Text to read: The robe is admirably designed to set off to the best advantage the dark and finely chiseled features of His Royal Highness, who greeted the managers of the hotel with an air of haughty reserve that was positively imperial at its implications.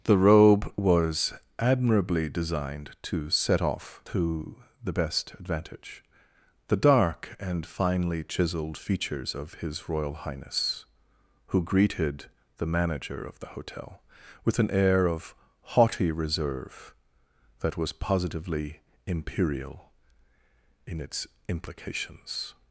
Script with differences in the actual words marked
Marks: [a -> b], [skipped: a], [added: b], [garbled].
The robe [is -> was] admirably designed to set off to the best advantage the dark and finely chiseled features of His Royal Highness, who greeted the [managers -> manager] of the hotel with an air of haughty reserve that was positively imperial [at -> in] its implications.